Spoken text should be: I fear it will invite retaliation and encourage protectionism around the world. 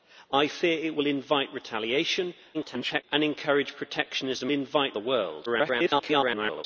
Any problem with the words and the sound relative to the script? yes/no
yes